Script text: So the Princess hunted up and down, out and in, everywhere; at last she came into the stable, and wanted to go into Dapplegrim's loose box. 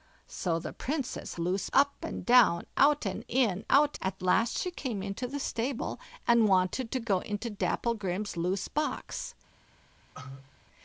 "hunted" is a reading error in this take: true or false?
true